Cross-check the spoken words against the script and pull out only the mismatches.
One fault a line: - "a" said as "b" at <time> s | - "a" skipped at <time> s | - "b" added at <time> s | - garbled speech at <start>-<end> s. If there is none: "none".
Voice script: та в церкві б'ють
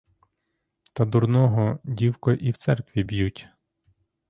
- "дурного дівко і" added at 1.1 s